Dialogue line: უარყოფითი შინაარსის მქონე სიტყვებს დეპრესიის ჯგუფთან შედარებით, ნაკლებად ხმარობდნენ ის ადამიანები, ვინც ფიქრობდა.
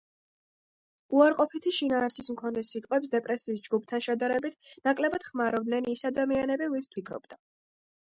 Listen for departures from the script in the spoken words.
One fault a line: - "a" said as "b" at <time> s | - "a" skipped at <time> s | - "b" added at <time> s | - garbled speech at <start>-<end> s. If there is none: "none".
none